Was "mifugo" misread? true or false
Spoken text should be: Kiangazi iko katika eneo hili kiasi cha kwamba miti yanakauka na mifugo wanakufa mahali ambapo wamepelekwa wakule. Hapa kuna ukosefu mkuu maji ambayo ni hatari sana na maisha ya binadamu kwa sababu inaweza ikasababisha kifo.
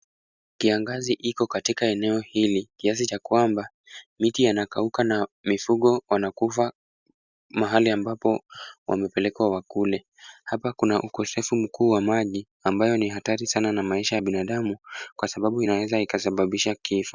false